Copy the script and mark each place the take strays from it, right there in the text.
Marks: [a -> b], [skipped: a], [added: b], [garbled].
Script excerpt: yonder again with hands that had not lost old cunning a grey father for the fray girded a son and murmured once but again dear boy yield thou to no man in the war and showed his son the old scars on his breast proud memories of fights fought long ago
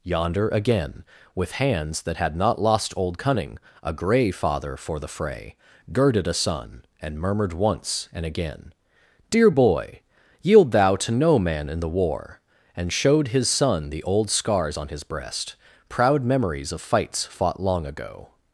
yonder again with hands that had not lost old cunning a grey father for the fray girded a son and murmured once [but -> and] again dear boy yield thou to no man in the war and showed his son the old scars on his breast proud memories of fights fought long ago